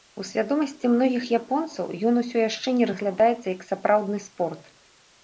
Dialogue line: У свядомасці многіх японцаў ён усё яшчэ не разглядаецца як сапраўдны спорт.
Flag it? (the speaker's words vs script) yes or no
no